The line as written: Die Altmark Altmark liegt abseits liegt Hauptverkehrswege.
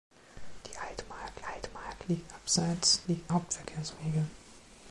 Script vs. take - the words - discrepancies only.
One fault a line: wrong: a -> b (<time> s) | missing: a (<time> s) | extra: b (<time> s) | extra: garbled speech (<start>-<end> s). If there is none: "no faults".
no faults